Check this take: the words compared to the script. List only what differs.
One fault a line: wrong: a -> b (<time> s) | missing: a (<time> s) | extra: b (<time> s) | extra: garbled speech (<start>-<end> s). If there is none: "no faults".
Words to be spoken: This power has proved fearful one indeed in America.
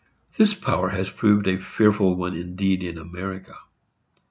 extra: a (1.4 s)